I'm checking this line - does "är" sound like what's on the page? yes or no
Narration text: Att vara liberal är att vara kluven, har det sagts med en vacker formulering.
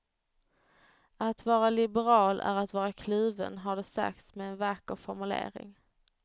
yes